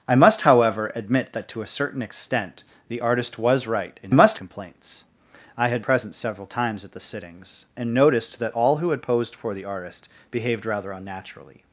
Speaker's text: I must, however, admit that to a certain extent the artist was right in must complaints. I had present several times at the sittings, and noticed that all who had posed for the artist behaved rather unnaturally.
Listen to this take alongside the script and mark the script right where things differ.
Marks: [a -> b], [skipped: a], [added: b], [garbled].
I must, however, admit that to a certain extent the artist was right in must complaints. I had present several times at the sittings, and noticed that all who had posed for the artist behaved rather unnaturally.